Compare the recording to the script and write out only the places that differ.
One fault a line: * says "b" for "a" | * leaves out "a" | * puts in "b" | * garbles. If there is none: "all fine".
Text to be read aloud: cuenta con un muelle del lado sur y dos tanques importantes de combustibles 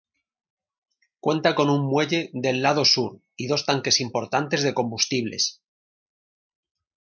all fine